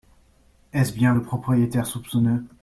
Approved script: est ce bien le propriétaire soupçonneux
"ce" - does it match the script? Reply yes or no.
yes